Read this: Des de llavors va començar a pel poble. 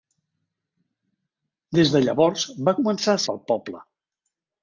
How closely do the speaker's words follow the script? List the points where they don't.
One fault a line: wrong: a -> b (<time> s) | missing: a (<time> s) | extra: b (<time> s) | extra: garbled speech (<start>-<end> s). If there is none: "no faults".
no faults